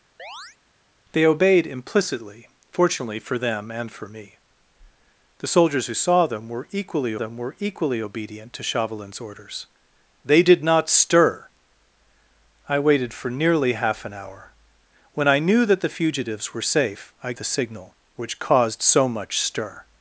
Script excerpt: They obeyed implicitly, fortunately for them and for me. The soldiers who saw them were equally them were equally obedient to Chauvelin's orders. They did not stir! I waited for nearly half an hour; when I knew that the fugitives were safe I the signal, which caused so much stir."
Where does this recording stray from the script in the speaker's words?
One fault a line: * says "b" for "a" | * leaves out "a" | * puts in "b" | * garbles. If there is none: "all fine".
all fine